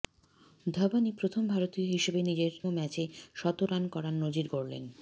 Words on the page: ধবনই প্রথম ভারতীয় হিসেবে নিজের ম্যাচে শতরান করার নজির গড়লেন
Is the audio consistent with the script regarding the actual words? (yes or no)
yes